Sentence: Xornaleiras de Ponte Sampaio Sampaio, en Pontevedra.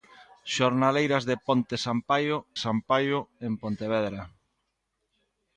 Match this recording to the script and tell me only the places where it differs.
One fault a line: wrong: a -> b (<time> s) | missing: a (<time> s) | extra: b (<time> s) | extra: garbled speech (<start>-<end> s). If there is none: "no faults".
no faults